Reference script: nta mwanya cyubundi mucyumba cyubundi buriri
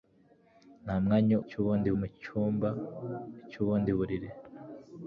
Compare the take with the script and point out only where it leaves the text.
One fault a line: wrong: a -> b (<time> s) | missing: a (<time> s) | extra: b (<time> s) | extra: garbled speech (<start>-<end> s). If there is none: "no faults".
no faults